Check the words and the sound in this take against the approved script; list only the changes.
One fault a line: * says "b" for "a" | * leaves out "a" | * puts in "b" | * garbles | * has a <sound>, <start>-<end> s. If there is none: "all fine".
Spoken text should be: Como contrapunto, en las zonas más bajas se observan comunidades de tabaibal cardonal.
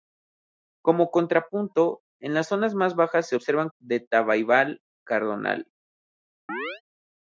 * leaves out "comunidades"
* has a chirp, 6.5-6.8 s